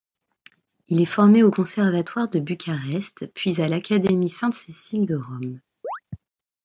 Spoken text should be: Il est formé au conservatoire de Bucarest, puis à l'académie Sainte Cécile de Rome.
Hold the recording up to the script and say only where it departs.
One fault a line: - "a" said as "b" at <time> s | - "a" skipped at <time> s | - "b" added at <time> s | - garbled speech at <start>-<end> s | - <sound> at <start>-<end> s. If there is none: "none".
- chirp at 5.8-6.0 s